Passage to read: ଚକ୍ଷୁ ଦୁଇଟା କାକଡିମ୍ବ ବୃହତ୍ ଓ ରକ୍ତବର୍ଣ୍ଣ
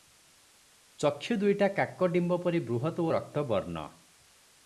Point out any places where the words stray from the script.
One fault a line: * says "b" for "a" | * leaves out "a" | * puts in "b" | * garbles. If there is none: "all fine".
* puts in "ପରି"